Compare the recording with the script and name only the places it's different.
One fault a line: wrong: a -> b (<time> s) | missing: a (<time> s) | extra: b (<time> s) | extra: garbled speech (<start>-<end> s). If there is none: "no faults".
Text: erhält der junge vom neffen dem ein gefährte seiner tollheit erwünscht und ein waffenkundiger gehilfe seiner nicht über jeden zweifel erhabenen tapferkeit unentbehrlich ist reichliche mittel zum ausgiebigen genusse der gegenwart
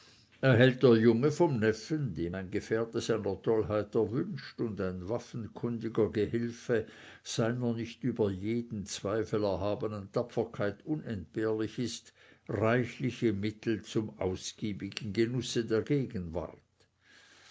no faults